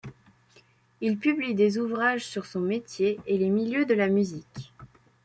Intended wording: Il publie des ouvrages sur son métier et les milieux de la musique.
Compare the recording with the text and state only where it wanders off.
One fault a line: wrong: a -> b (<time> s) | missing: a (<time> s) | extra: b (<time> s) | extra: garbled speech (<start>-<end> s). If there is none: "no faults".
no faults